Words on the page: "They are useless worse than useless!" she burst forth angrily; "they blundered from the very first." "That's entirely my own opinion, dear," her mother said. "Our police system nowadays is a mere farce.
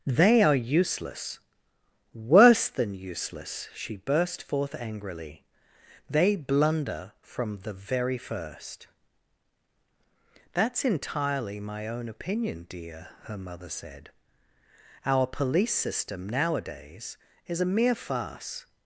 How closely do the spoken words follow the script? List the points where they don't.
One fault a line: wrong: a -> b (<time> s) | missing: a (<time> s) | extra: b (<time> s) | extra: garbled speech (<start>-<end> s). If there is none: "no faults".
wrong: blundered -> blunder (6.3 s)